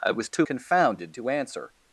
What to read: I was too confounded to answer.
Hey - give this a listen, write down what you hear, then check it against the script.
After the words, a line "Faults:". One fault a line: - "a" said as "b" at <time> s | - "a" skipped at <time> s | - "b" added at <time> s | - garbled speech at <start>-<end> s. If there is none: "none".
I was too confounded to answer.
Faults:
none